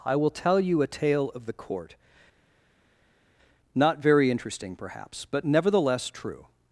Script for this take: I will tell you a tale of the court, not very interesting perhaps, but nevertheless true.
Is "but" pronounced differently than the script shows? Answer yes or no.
no